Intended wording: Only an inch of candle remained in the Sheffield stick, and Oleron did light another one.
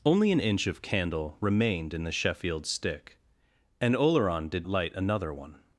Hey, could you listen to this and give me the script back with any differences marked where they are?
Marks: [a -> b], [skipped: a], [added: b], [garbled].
Only an inch of candle remained in the Sheffield stick, and Oleron did light another one.